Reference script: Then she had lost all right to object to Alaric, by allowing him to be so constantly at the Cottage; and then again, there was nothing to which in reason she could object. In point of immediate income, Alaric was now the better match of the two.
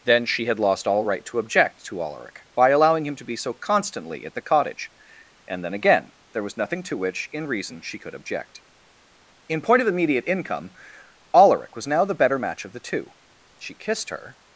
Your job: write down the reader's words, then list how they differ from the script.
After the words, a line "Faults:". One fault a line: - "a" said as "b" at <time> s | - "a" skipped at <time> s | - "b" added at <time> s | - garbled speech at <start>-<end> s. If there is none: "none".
Then she had lost all right to object to Alaric, by allowing him to be so constantly at the Cottage; and then again, there was nothing to which in reason she could object. In point of immediate income, Alaric was now the better match of the two. She kissed her
Faults:
- "She kissed her" added at 13.6 s